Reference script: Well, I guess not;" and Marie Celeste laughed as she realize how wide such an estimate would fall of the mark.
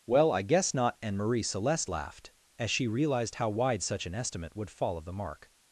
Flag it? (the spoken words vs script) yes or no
yes